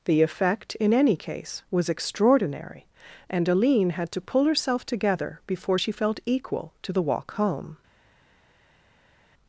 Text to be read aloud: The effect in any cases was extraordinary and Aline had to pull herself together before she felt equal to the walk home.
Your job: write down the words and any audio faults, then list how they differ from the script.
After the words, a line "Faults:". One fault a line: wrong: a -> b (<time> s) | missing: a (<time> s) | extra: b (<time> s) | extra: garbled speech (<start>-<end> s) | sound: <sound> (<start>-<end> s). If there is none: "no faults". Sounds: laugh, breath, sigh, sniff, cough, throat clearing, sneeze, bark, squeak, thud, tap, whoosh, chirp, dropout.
The effect in any case was extraordinary and Aline had to pull herself together before she felt equal to the walk home.
Faults:
wrong: cases -> case (1.1 s)